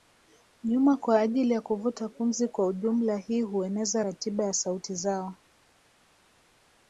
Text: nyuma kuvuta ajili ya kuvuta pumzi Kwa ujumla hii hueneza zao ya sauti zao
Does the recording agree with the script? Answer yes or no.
no